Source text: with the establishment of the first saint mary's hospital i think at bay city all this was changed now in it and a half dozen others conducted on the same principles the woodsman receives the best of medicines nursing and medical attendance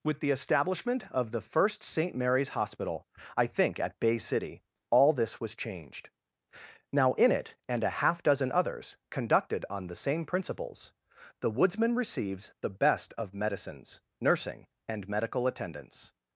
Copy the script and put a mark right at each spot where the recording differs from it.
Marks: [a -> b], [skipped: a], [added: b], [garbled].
with the establishment of the first saint mary's hospital i think at bay city all this was changed now in it and a half dozen others conducted on the same principles the woodsman receives the best of medicines nursing and medical attendance